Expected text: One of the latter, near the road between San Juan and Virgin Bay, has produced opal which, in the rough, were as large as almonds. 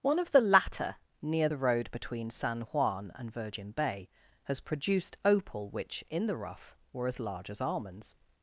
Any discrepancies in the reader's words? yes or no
no